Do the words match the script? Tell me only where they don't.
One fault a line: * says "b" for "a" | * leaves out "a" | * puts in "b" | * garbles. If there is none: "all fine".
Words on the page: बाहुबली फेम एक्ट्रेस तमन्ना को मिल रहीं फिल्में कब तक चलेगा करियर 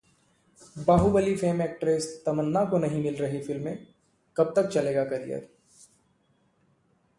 * puts in "नहीं"